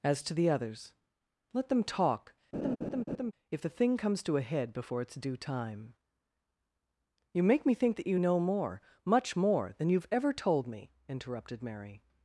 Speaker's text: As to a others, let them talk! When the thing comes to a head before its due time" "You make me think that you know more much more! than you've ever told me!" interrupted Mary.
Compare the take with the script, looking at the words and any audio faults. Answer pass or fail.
fail